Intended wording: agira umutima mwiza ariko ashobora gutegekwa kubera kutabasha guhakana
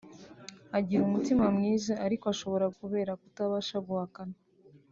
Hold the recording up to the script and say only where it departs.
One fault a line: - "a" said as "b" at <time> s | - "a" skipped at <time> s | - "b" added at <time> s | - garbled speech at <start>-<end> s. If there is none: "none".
- "gutegekwa" skipped at 2.6 s